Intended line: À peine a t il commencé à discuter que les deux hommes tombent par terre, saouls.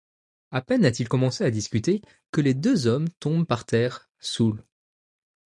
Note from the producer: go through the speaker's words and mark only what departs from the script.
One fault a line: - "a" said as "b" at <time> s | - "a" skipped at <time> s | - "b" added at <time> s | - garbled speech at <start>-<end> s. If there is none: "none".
none